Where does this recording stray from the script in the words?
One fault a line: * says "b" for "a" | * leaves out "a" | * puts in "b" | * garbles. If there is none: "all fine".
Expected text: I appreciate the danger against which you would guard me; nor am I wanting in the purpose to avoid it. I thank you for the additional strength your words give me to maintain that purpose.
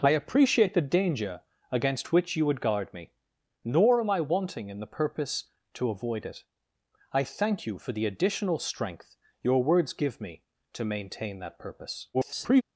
* garbles